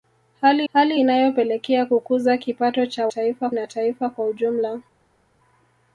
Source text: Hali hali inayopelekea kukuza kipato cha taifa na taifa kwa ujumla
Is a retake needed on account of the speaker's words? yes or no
no